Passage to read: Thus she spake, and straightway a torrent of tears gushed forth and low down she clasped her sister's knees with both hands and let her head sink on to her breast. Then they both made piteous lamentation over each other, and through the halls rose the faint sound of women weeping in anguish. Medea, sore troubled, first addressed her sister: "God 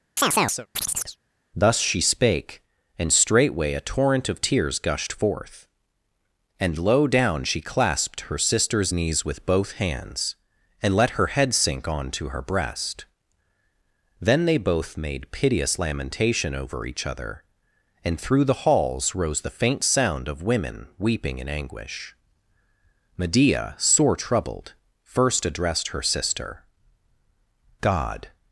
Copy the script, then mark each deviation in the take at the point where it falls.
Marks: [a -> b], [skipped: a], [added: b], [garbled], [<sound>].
[chirp] Thus she spake, and straightway a torrent of tears gushed forth and low down she clasped her sister's knees with both hands and let her head sink on to her breast. Then they both made piteous lamentation over each other, and through the halls rose the faint sound of women weeping in anguish. Medea, sore troubled, first addressed her sister: "God